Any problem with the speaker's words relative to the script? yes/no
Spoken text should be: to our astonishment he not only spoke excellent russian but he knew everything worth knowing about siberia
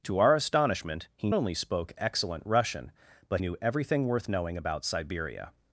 yes